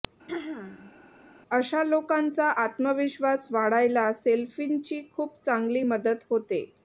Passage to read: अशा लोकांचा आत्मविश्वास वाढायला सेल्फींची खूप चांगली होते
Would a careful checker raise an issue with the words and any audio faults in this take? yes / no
yes